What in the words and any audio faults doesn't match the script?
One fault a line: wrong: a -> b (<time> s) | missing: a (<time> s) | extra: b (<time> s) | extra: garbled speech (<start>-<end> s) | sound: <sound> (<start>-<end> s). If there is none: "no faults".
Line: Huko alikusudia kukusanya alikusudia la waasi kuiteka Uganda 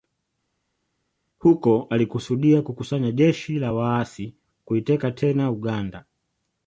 wrong: alikusudia -> jeshi (3.1 s)
extra: tena (5.1 s)